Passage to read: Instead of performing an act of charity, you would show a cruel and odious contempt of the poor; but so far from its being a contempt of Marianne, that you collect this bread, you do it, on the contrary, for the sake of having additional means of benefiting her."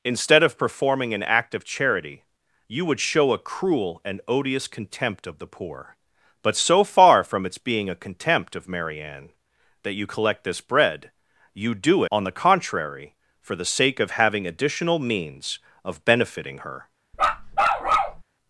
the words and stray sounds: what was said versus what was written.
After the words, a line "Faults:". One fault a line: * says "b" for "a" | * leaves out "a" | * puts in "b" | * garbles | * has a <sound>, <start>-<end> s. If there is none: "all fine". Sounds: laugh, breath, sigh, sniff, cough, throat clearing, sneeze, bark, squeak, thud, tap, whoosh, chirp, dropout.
Instead of performing an act of charity, you would show a cruel and odious contempt of the poor; but so far from its being a contempt of Marianne, that you collect this bread, you do on the contrary, for the sake of having additional means of benefiting her."
Faults:
* leaves out "it"
* has a bark, 17.1-18.2 s